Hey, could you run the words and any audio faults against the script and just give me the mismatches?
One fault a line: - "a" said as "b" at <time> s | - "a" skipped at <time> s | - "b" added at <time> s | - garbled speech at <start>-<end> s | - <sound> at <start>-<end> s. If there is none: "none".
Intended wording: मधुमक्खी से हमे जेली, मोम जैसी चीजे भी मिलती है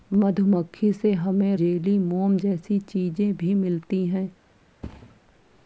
- thud at 4.8-5.2 s